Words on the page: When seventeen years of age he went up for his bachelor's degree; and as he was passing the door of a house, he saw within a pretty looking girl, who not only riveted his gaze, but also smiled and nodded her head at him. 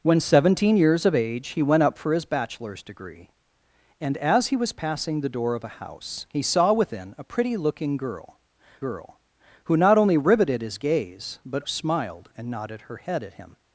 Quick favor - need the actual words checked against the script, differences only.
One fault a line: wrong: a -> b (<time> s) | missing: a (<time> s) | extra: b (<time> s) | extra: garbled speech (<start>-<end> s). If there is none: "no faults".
extra: girl (8.8 s)
missing: also (11.6 s)